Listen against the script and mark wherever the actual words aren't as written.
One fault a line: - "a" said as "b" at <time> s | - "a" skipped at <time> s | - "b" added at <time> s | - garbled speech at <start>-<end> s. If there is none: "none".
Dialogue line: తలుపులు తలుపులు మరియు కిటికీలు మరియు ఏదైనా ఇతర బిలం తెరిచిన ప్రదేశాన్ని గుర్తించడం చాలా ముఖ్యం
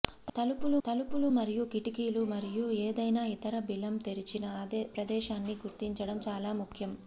none